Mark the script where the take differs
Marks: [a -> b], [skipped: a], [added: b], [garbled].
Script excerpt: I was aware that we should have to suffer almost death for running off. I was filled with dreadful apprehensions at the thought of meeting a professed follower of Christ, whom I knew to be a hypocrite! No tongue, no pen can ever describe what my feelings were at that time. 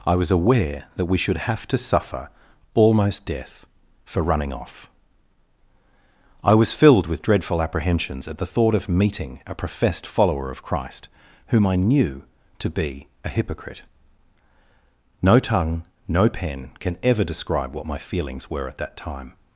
I was aware that we should have to suffer almost death for running off. I was filled with dreadful apprehensions at the thought of meeting a professed follower of Christ, whom I knew to be a hypocrite! No tongue, no pen can ever describe what my feelings were at that time.